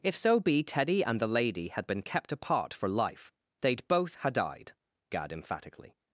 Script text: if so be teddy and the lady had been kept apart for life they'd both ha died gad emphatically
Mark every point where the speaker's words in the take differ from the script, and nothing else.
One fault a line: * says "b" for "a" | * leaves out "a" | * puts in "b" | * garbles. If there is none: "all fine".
all fine